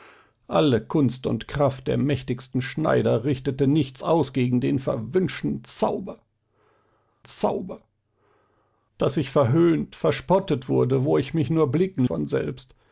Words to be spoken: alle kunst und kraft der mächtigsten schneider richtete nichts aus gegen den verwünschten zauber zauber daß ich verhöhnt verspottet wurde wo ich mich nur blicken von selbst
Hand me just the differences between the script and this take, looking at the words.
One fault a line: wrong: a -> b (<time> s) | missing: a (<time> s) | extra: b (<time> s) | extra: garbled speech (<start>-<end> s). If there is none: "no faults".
no faults